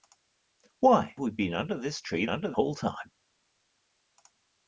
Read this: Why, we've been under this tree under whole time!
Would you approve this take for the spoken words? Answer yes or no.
yes